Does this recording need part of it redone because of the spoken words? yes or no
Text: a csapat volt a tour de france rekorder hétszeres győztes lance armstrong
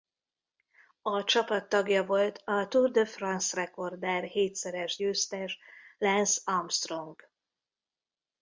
yes